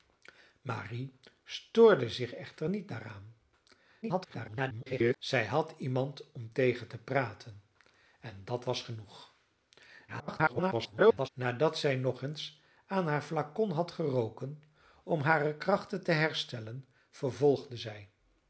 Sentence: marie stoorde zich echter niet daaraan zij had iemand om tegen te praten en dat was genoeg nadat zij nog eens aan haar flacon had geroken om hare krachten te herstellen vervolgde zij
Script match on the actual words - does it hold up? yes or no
no